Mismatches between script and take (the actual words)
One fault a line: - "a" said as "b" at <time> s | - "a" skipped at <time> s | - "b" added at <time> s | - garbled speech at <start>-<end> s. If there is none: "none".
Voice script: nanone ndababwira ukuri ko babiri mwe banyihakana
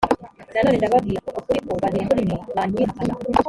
- "muri" added at 2.1 s